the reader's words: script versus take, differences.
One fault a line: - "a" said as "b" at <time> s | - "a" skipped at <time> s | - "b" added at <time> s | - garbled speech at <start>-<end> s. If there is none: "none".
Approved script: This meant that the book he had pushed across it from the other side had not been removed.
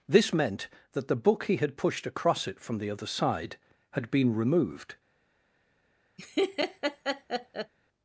- "not" skipped at 4.1 s